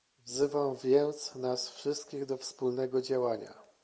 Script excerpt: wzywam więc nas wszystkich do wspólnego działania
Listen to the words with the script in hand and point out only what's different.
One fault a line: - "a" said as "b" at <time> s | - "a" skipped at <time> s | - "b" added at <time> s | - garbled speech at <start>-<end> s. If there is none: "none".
none